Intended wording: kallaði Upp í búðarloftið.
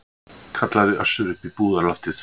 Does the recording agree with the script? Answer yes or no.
no